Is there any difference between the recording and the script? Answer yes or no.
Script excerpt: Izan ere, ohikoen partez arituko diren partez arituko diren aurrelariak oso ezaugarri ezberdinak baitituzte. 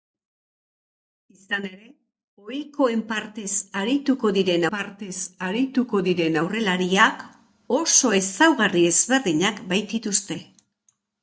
no